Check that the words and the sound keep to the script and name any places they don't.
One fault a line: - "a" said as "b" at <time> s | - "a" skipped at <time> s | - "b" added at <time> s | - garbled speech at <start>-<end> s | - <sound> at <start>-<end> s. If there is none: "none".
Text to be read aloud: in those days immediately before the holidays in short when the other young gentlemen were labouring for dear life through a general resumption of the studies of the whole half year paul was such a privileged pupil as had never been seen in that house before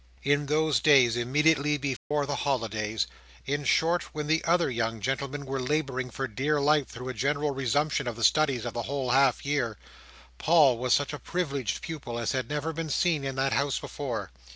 - dropout at 2.0-2.1 s